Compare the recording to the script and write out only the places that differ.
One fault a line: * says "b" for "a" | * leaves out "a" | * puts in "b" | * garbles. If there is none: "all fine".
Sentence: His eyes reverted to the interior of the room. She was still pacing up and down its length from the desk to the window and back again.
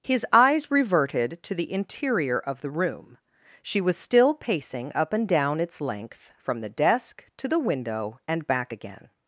all fine